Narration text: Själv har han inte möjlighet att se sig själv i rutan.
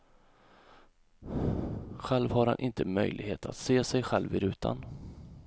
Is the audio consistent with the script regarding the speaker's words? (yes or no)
yes